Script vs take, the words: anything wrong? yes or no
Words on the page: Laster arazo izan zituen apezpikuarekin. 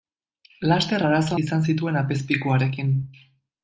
no